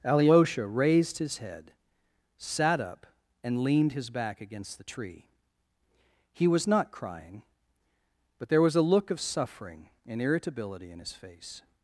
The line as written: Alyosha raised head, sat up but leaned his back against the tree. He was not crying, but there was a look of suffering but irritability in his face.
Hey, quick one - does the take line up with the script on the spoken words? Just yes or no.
no